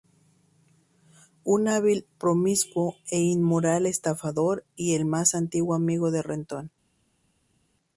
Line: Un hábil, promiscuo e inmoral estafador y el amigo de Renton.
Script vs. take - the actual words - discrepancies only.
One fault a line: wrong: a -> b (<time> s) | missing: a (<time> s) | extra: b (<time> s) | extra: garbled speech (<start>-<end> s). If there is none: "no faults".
extra: más antiguo (5.0 s)